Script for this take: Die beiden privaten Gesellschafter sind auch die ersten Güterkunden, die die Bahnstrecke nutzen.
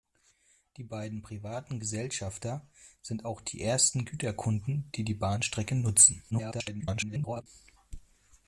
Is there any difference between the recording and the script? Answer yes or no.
yes